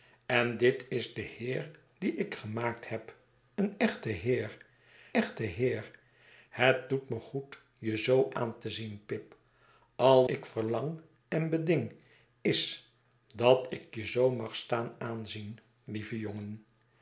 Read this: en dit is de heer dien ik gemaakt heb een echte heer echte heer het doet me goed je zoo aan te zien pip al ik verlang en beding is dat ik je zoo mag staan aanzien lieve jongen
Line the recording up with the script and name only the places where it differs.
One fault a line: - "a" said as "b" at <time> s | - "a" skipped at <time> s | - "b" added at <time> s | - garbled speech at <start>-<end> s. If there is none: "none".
none